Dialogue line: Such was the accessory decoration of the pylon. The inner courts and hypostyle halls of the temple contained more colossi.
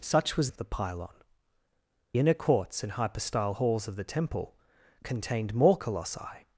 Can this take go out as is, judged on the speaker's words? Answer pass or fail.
fail